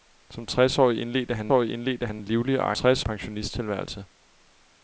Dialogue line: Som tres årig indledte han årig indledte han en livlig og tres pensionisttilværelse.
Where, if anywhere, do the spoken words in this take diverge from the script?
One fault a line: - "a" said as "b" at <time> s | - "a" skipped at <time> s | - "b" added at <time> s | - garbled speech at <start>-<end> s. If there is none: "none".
none